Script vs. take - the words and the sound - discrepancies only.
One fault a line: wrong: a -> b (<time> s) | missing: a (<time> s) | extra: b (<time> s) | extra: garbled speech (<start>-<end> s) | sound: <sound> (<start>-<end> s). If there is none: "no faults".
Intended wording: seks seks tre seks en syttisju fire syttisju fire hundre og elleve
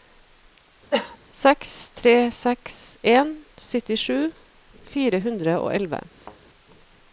sound: cough (0.9-1.2 s)
missing: seks (1.7 s)
missing: syttisju fire (5.2 s)
sound: thud (6.2-6.4 s)